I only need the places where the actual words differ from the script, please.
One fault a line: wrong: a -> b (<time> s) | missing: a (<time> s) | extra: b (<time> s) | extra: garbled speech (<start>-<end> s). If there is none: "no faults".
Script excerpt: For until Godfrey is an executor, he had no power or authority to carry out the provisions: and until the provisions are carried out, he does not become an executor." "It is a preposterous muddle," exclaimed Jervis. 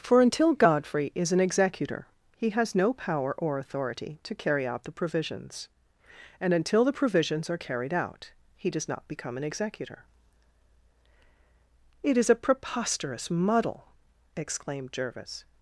wrong: had -> has (2.5 s)